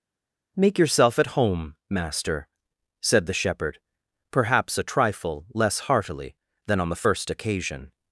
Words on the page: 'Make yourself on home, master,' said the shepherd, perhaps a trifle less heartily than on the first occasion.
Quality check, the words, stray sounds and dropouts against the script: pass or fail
fail